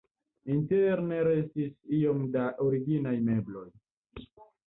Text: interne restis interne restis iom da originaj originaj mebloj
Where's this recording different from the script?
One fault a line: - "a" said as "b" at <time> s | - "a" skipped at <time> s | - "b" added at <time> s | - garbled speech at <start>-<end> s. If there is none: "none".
- "interne restis" skipped at 1.8 s
- "originaj" skipped at 3.1 s